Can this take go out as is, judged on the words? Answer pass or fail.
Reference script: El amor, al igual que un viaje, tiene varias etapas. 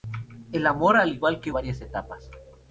fail